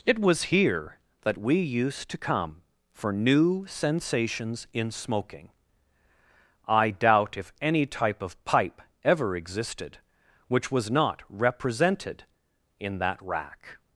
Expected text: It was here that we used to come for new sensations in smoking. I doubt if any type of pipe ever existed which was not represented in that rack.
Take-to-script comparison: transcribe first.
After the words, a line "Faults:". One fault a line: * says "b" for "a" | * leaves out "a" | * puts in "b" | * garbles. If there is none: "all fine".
It was here that we used to come for new sensations in smoking. I doubt if any type of pipe ever existed which was not represented in that rack.
Faults:
all fine